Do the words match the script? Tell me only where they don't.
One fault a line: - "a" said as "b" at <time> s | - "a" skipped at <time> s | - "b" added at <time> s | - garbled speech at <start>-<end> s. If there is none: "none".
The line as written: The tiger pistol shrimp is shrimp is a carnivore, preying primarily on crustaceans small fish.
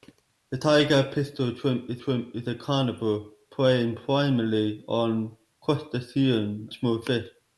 none